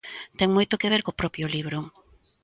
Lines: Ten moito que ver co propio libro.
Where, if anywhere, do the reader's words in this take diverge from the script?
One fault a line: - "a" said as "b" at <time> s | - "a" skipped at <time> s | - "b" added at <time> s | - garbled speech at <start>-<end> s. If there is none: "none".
none